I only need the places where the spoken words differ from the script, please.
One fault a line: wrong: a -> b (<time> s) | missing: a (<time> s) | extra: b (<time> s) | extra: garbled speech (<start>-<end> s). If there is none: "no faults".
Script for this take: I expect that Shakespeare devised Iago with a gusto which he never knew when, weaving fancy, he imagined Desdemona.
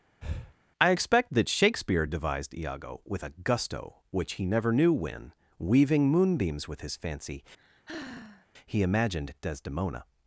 extra: moonbeams with his (6.1 s)